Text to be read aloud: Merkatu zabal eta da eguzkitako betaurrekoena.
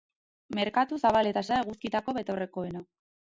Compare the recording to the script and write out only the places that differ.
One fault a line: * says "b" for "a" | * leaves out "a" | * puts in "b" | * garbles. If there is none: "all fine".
all fine